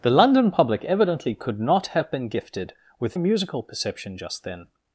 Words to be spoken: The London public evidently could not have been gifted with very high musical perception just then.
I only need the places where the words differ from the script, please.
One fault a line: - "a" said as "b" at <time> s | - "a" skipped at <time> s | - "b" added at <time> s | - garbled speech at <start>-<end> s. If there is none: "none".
- "very high" skipped at 3.1 s